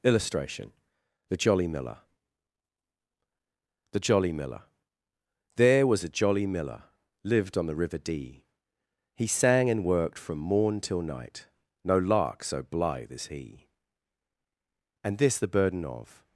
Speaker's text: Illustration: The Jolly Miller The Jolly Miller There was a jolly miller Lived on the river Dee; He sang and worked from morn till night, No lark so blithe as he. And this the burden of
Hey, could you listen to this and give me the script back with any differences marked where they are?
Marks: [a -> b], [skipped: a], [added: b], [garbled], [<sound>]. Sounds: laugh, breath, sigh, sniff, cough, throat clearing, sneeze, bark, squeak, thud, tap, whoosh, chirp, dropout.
Illustration: The Jolly Miller The Jolly Miller There was a jolly miller Lived on the river Dee; He sang and worked from morn till night, No lark so blithe as he. And this the burden of